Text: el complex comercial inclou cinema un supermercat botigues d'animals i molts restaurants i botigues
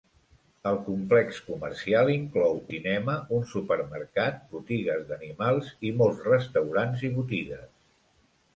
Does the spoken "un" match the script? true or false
true